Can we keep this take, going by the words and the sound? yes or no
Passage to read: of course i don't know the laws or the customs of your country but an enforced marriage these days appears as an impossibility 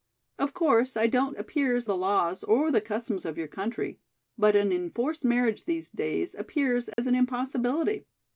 no